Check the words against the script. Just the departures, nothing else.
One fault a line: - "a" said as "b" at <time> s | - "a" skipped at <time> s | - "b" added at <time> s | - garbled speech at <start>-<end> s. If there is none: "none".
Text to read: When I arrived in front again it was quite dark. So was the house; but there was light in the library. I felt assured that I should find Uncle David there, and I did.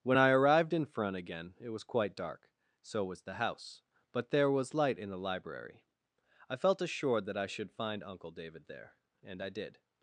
none